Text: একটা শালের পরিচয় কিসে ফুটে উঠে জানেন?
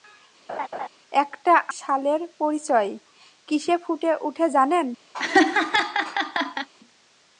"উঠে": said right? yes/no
yes